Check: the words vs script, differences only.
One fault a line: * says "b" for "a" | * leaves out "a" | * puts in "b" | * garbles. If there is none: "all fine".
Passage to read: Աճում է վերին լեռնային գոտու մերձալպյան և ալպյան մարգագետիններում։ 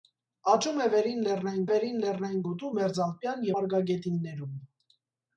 * puts in "վերին լեռնային"
* leaves out "և ալպյան"